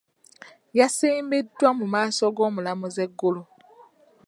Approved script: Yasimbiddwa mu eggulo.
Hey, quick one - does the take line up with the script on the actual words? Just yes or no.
no